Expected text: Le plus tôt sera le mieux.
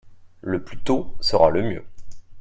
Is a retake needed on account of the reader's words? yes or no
no